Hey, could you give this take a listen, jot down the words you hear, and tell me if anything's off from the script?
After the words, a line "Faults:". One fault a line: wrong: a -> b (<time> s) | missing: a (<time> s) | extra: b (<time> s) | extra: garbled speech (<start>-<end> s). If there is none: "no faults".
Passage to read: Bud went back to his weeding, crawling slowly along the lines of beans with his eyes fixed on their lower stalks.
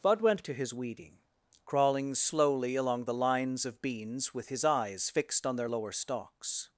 Bud went to his weeding, crawling slowly along the lines of beans with his eyes fixed on their lower stalks.
Faults:
missing: back (0.5 s)